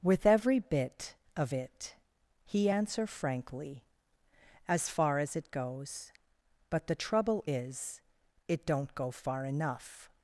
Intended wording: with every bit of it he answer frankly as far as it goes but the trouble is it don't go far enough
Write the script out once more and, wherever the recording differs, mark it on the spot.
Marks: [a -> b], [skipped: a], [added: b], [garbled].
with every bit of it he answer frankly as far as it goes but the trouble is it don't go far enough